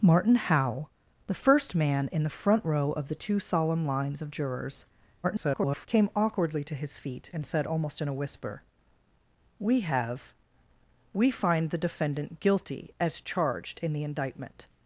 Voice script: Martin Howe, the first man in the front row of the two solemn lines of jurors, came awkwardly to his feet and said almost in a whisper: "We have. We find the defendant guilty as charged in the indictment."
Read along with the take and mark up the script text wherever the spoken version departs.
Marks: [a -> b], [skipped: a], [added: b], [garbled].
Martin Howe, the first man in the front row of the two solemn lines of jurors, [garbled] came awkwardly to his feet and said almost in a whisper: "We have. We find the defendant guilty as charged in the indictment."